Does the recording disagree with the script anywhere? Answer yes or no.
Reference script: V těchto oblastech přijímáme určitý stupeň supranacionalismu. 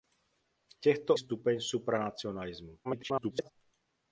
yes